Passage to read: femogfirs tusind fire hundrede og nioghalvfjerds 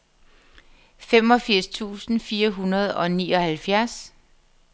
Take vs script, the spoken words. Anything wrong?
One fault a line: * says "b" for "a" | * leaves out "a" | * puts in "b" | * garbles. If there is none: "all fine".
all fine